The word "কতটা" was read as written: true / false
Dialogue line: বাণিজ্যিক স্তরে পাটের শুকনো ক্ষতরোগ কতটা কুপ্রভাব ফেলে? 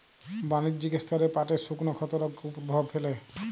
false